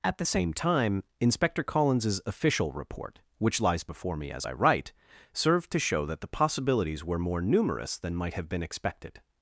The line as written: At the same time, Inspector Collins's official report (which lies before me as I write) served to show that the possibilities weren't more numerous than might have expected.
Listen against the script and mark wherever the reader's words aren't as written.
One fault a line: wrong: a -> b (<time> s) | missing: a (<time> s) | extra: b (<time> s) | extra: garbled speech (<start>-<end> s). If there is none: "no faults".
wrong: weren't -> were (7.0 s)
extra: been (8.5 s)